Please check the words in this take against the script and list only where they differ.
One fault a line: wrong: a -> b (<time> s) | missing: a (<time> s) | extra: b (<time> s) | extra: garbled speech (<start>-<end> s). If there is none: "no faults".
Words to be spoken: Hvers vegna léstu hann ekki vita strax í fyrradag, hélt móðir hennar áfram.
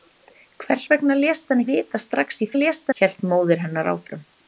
missing: ekki (1.6 s)
wrong: fyrradag -> léstu (2.6 s)